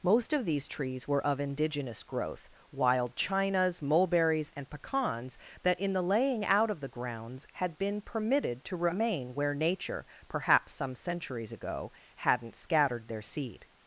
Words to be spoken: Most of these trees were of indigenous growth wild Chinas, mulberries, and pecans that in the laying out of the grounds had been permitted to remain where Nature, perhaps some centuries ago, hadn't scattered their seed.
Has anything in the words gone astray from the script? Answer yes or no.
no